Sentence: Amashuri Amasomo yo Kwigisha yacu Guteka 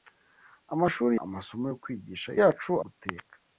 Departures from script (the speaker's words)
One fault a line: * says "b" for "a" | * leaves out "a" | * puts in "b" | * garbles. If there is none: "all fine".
all fine